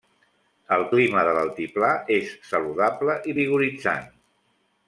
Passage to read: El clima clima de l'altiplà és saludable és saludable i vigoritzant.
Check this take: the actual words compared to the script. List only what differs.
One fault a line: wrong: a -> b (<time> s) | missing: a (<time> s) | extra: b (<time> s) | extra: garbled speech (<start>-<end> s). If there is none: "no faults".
missing: clima (1.2 s)
missing: és saludable (3.2 s)